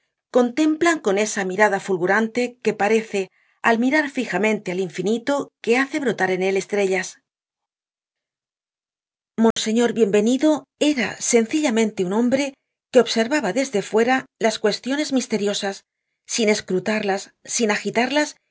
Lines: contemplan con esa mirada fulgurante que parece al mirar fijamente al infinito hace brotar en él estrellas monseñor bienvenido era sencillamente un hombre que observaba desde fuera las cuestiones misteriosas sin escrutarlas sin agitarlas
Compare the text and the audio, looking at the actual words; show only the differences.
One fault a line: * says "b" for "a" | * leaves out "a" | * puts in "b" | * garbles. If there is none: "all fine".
* puts in "que"